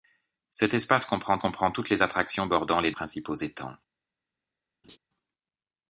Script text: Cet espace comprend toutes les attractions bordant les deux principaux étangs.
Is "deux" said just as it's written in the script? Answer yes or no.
no